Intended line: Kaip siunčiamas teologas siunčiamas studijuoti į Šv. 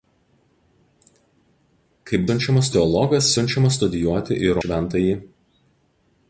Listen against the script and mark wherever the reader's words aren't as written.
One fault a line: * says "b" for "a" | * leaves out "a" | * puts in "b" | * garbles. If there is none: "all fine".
all fine